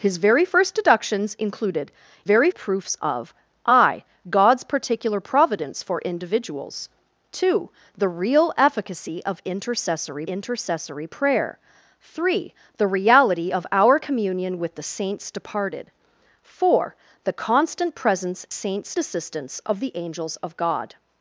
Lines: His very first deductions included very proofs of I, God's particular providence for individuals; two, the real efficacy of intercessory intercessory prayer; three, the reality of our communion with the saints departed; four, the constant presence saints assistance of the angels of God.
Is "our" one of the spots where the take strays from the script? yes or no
no